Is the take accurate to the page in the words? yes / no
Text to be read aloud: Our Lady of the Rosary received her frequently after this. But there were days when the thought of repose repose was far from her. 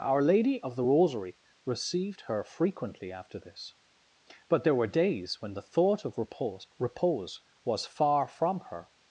yes